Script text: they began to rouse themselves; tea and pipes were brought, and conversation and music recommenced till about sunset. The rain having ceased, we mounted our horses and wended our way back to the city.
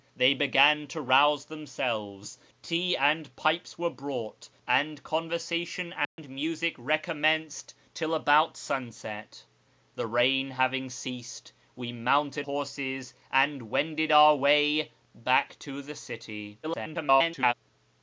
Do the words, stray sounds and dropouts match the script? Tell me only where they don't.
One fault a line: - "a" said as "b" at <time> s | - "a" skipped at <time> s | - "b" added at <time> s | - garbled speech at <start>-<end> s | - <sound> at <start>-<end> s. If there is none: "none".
- dropout at 6.0-6.2 s
- "our" skipped at 12.5 s
- garbled speech at 16.6-17.5 s